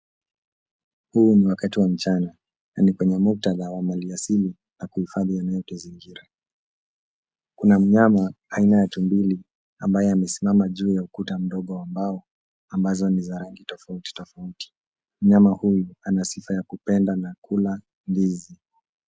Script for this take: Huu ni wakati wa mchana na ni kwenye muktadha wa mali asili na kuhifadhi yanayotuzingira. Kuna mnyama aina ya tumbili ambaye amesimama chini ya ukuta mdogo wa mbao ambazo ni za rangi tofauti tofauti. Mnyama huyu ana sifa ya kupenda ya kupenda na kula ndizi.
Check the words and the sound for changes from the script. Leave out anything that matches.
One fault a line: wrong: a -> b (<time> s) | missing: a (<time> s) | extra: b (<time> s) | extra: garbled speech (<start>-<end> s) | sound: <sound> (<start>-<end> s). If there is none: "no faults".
wrong: chini -> juu (10.7 s)
missing: ya kupenda (17.2 s)